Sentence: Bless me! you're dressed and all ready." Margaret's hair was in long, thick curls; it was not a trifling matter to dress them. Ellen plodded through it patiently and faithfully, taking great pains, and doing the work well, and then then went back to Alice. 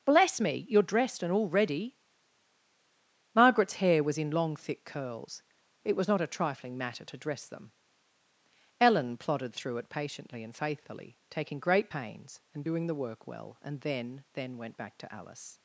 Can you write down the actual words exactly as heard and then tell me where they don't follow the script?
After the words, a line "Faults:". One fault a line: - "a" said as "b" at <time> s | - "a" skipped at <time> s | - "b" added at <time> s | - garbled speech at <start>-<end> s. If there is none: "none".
Bless me! you're dressed and all ready." Margaret's hair was in long, thick curls; it was not a trifling matter to dress them. Ellen plodded through it patiently and faithfully, taking great pains, and doing the work well, and then then went back to Alice.
Faults:
none